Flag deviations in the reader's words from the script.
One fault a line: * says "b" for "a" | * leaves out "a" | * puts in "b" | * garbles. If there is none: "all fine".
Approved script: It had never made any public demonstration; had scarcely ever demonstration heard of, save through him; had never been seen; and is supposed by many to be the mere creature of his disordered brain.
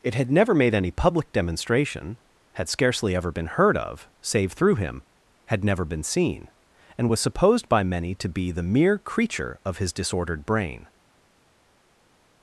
* says "been" for "demonstration"
* says "was" for "is"